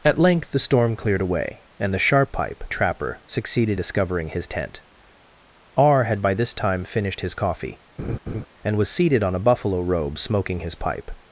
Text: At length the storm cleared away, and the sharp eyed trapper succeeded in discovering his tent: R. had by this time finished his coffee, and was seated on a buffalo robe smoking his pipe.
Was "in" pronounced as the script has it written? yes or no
no